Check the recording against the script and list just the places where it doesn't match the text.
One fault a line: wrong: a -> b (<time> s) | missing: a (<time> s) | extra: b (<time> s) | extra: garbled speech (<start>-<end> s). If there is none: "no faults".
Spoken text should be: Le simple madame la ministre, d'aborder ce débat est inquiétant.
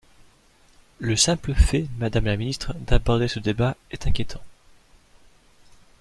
extra: fait (1.5 s)